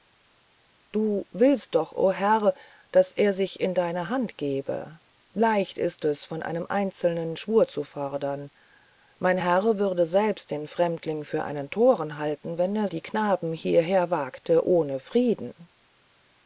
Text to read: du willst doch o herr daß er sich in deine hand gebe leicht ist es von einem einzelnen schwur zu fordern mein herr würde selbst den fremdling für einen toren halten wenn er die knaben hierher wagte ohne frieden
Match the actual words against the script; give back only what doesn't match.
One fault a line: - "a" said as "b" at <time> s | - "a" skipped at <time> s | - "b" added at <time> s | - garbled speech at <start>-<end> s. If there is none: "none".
none